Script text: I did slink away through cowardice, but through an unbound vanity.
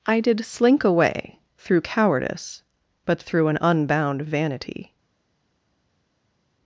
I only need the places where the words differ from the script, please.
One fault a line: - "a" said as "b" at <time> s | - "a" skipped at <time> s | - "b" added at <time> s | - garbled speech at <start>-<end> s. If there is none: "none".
none